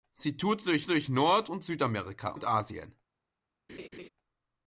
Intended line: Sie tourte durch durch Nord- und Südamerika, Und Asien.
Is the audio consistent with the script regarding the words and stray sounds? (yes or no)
no